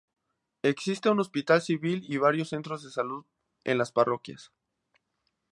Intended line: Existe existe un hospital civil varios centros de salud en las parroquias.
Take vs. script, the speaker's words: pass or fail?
fail